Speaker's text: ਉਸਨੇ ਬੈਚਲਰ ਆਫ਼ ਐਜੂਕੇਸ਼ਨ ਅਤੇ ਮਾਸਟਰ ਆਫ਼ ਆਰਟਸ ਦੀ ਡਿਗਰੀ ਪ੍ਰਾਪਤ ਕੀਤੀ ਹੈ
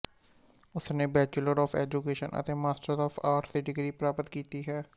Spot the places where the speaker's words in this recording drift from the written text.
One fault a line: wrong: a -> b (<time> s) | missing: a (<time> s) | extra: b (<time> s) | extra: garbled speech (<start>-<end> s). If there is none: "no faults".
no faults